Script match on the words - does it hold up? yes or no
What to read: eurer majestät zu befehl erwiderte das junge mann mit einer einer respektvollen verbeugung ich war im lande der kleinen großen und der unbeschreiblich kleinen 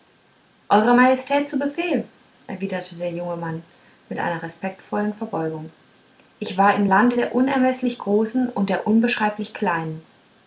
no